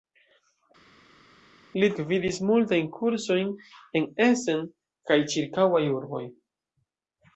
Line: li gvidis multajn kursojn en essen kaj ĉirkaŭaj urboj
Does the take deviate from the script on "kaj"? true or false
false